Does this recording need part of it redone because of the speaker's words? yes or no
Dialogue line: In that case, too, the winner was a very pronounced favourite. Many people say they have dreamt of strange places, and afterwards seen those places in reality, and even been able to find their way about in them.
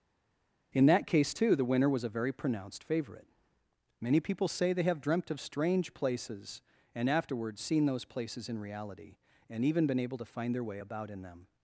no